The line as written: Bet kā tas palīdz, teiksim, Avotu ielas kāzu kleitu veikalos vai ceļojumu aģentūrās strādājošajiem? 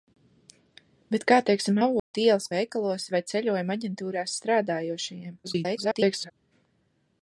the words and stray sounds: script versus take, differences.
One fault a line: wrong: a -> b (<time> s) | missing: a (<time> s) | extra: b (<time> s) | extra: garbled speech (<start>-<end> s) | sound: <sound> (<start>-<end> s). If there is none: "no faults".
missing: tas palīdz (1.4 s)
sound: dropout (2.0-2.1 s)
missing: kāzu kleitu (2.5 s)
extra: garbled speech (5.4-6.3 s)